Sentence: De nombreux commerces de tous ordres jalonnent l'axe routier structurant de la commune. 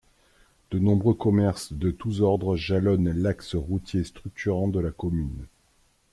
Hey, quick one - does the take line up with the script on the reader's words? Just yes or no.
yes